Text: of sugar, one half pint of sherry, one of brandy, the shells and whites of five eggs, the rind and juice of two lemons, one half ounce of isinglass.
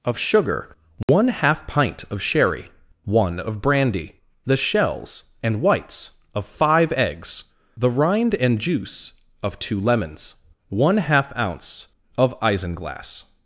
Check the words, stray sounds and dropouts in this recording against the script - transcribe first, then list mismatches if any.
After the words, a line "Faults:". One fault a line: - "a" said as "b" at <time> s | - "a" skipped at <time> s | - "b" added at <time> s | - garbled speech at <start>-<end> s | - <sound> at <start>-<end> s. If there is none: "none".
of sugar, one half pint of sherry, one of brandy, the shells and whites of five eggs, the rind and juice of two lemons, one half ounce of isinglass.
Faults:
- dropout at 1.0-1.1 s